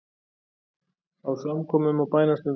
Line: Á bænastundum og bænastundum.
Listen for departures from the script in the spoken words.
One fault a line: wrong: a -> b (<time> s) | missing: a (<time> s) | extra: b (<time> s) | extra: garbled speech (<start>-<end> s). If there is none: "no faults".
wrong: bænastundum -> samkomum (1.4 s)